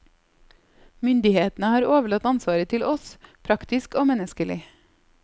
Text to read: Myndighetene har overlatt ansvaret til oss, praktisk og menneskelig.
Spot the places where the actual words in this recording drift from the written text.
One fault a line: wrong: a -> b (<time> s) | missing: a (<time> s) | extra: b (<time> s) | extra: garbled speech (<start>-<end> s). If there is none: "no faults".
no faults